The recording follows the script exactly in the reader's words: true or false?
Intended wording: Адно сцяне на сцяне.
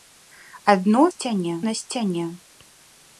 true